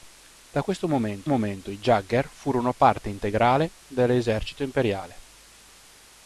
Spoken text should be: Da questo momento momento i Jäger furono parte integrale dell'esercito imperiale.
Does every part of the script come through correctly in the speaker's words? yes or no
yes